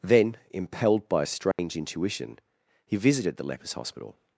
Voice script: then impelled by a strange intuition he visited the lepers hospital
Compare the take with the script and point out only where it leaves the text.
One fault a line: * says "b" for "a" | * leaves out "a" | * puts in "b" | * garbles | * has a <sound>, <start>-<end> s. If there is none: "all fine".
* has a dropout, 1.5-1.6 s